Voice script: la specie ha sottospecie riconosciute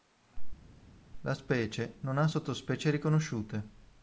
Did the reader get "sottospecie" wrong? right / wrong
right